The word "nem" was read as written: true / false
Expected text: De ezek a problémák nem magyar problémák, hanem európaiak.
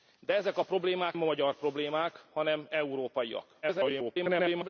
false